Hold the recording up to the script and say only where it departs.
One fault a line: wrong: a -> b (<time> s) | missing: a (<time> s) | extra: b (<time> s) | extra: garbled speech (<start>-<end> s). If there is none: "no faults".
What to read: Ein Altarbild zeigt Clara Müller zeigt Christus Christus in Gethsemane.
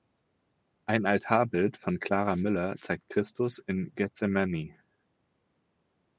wrong: zeigt -> von (1.8 s)
missing: Christus (3.6 s)